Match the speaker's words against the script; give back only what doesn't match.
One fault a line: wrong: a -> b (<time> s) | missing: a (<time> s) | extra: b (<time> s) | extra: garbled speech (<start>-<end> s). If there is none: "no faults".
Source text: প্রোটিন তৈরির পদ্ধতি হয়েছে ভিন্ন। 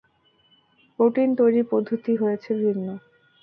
no faults